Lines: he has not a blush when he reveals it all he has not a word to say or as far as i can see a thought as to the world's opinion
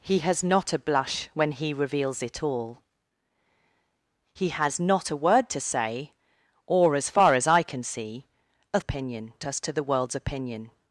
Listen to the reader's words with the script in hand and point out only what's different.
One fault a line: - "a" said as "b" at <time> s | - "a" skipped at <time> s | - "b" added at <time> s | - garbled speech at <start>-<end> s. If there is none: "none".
- "thought" said as "opinion" at 8.8 s